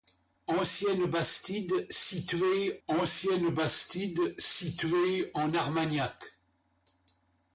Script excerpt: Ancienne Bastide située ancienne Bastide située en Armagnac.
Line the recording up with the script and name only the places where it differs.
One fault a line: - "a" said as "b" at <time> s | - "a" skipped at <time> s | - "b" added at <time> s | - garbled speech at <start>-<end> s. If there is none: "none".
none